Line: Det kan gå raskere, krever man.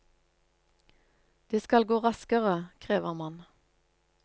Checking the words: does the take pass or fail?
fail